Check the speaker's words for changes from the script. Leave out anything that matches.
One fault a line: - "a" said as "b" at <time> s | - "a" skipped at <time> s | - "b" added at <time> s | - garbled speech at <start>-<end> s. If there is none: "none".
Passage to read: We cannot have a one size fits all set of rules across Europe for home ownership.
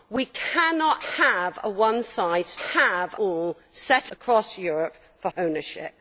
- "fits" said as "have" at 2.6 s
- "of rules" skipped at 4.1 s
- "home" skipped at 5.3 s